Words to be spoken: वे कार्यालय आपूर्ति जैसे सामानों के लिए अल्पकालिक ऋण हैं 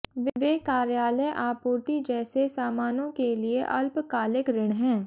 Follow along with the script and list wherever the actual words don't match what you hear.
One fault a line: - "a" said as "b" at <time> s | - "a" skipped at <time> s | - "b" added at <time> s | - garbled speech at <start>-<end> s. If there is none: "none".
none